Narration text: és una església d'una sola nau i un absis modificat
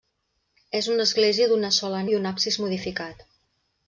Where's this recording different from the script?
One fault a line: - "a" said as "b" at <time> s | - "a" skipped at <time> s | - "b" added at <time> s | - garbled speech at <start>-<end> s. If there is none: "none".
- "nau" skipped at 2.0 s